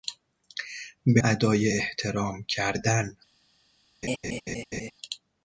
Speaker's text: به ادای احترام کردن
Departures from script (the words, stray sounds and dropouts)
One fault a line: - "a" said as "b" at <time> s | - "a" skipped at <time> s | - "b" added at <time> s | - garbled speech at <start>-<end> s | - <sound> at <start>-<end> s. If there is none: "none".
- laugh at 4.0-4.9 s